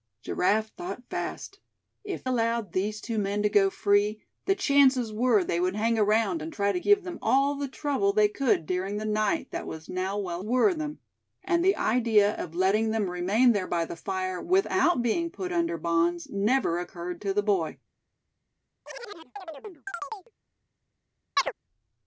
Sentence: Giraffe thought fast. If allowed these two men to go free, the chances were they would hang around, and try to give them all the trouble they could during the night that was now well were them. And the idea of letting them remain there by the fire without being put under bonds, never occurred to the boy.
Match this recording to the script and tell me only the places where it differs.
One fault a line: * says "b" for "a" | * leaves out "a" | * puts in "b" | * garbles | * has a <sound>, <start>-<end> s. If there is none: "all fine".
* has a chirp, 18.9-20.3 s
* has a chirp, 21.4-21.5 s